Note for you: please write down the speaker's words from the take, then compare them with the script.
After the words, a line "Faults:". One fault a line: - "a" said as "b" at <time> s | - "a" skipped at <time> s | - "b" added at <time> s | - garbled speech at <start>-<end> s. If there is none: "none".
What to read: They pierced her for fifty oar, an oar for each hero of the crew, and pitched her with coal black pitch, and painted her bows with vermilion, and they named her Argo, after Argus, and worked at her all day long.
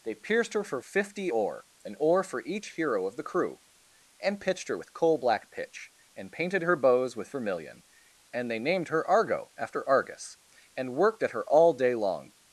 They pierced her for fifty oar, an oar for each hero of the crew, and pitched her with coal black pitch, and painted her bows with vermilion, and they named her Argo, after Argus, and worked at her all day long.
Faults:
none